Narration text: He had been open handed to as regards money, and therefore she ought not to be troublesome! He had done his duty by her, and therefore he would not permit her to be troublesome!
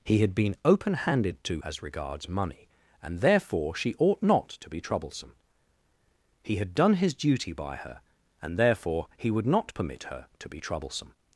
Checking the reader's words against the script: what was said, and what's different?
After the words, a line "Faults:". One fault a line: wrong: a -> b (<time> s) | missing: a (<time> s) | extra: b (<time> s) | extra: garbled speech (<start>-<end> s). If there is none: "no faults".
He had been open handed to as regards money, and therefore she ought not to be troublesome! He had done his duty by her, and therefore he would not permit her to be troublesome!
Faults:
no faults